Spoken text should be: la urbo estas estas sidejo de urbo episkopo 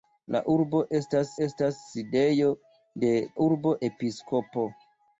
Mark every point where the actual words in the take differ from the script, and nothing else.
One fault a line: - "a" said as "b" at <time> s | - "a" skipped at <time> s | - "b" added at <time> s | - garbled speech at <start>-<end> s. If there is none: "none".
none